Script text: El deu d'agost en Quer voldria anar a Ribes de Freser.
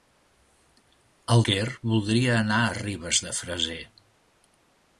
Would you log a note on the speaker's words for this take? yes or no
yes